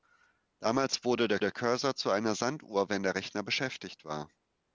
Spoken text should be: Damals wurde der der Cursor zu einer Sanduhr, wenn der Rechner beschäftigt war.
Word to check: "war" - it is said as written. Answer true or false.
true